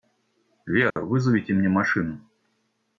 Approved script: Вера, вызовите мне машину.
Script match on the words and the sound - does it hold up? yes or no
no